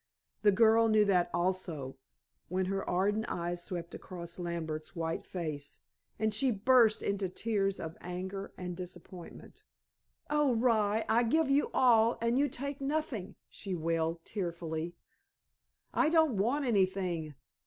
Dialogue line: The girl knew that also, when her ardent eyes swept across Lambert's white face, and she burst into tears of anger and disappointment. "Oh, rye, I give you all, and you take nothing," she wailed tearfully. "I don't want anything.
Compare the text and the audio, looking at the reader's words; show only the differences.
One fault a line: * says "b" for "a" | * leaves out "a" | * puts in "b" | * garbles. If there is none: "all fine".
all fine